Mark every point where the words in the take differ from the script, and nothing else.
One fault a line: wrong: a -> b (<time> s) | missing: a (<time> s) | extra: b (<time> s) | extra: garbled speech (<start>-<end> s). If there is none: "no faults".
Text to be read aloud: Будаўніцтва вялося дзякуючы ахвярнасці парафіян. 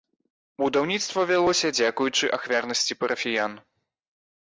no faults